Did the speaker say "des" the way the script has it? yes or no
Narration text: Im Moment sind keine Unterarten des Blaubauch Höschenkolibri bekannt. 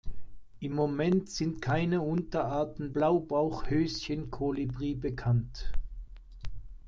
no